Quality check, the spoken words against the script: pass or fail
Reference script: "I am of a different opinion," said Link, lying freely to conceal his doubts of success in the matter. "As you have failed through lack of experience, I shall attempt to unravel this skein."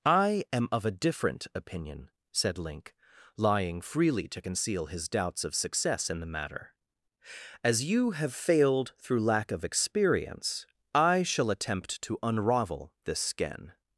pass